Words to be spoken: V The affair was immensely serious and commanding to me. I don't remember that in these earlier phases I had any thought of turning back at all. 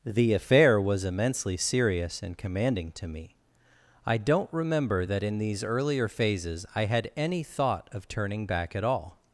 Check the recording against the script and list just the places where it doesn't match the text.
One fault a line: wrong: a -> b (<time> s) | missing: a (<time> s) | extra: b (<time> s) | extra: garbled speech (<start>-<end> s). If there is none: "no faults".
missing: V (0.1 s)